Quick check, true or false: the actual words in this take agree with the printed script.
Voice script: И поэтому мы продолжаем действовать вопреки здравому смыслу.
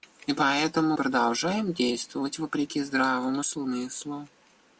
false